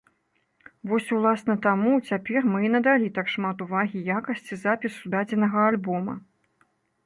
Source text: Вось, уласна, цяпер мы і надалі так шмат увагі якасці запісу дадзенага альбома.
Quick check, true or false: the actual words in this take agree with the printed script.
false